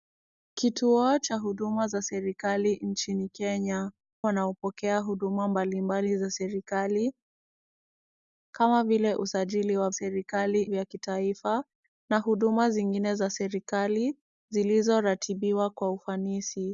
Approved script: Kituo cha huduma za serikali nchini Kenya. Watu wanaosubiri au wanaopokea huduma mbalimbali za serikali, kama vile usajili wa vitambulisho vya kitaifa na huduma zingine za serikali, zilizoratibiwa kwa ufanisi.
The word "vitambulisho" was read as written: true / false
false